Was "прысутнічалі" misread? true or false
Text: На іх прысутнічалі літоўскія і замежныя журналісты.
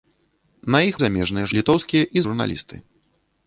true